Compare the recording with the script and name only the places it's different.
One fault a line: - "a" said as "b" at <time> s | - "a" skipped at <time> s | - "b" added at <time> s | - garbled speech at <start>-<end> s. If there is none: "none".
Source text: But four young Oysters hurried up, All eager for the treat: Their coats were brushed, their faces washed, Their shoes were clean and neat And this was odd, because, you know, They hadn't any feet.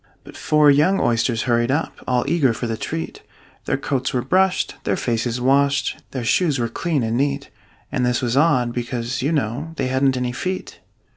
none